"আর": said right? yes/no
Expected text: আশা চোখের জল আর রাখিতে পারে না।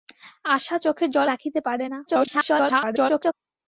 no